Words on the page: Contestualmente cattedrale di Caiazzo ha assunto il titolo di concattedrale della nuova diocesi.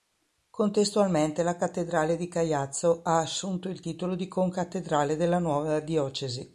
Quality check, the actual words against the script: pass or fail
fail